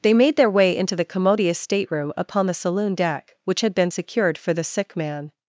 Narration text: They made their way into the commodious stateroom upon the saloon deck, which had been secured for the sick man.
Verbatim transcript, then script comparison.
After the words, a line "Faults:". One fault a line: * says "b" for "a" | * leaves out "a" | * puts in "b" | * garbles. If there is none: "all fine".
They made their way into the commodious stateroom upon the saloon deck, which had been secured for the sick man.
Faults:
all fine